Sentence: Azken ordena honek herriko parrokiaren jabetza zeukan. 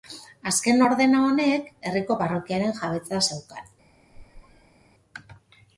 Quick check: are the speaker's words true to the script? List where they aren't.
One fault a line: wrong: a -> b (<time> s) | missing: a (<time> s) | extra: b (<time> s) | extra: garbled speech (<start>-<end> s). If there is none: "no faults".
no faults